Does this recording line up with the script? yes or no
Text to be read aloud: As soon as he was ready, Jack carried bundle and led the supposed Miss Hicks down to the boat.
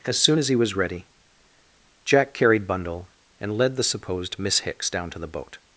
yes